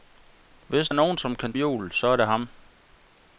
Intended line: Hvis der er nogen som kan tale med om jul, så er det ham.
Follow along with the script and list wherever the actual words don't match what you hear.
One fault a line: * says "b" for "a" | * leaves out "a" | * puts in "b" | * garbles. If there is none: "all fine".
* leaves out "der"
* leaves out "tale med om"